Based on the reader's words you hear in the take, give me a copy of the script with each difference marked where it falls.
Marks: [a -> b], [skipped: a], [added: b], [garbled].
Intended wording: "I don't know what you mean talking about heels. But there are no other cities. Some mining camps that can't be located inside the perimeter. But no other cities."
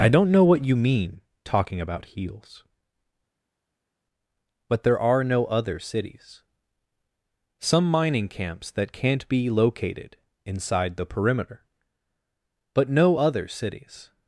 "I don't know what you mean talking about heels. But there are no other cities. Some mining camps that can't be located inside the perimeter. But no other cities."